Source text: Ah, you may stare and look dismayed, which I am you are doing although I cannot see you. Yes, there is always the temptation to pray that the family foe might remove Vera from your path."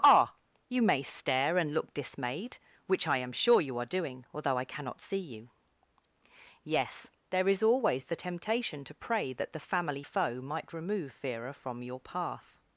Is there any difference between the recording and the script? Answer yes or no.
yes